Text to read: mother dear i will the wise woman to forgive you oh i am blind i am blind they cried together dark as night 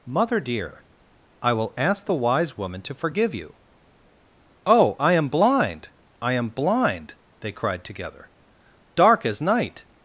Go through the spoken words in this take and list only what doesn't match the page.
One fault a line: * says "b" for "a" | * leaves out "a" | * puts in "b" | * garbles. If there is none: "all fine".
* puts in "ask"